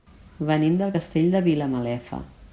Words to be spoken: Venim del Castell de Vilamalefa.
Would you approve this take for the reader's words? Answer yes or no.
yes